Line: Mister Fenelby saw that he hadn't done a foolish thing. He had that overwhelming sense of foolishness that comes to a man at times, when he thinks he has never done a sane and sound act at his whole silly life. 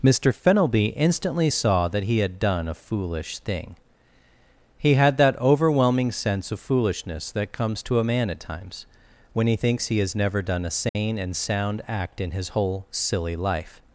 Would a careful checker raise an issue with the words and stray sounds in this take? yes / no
yes